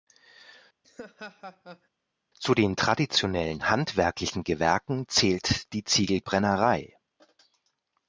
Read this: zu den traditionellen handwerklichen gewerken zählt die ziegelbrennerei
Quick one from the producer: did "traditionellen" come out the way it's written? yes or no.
yes